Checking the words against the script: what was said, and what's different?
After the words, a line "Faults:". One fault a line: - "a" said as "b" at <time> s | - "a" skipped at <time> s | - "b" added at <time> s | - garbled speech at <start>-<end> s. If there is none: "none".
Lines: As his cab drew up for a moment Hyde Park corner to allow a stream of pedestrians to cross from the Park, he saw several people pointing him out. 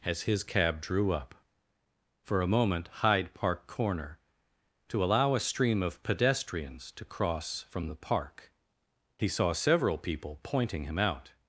As his cab drew up for a moment Hyde Park corner to allow a stream of pedestrians to cross from the Park, he saw several people pointing him out.
Faults:
none